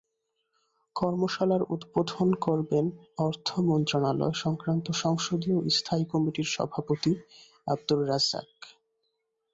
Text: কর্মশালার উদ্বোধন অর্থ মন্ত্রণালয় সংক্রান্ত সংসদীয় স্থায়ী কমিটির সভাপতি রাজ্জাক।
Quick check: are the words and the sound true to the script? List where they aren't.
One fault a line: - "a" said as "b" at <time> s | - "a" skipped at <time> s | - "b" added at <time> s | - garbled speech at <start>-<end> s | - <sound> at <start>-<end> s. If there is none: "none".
- "করবেন" added at 2.5 s
- "আবদুর" added at 7.7 s